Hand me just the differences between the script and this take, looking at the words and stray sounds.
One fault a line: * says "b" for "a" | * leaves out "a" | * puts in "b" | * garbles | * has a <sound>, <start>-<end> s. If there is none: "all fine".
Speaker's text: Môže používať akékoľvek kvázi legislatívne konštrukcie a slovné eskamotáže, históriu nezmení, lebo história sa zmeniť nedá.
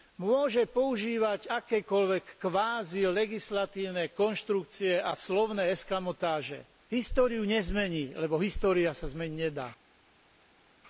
all fine